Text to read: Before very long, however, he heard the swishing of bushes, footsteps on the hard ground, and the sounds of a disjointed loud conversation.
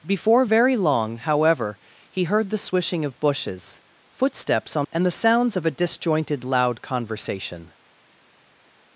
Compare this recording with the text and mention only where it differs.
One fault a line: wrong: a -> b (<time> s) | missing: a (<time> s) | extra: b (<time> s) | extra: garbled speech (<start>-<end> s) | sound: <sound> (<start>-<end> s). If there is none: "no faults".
missing: the hard ground (4.9 s)